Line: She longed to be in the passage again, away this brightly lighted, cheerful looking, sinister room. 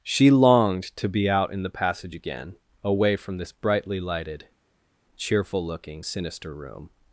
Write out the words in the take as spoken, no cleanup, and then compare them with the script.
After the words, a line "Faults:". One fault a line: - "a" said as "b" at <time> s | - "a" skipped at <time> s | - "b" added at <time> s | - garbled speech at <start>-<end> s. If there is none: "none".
She longed to be out in the passage again, away from this brightly lighted, cheerful looking, sinister room.
Faults:
- "out" added at 1.3 s
- "from" added at 3.2 s